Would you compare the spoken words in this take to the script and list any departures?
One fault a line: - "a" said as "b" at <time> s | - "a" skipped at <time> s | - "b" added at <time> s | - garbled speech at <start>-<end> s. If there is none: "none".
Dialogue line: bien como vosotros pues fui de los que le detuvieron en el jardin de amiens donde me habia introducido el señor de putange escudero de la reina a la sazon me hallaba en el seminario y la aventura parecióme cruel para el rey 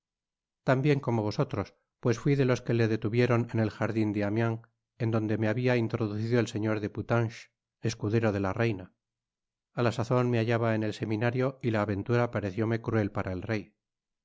- "en" added at 5.0 s